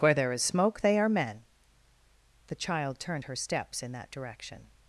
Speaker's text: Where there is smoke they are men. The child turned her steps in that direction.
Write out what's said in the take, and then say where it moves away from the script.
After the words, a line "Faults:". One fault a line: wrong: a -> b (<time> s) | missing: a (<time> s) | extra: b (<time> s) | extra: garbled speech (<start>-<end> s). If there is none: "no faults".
Where there is smoke they are men. The child turned her steps in that direction.
Faults:
no faults